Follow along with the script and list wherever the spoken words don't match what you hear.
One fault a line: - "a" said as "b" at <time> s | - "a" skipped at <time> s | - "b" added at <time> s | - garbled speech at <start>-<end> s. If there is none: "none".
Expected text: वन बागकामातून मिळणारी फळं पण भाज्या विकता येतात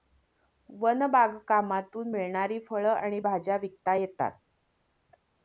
- "पण" said as "आणि" at 2.9 s